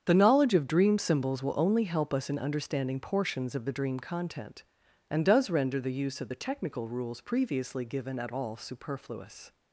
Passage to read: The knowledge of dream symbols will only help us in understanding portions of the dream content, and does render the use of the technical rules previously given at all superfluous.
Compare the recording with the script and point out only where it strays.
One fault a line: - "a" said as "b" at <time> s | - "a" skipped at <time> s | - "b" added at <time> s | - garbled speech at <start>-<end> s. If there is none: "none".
none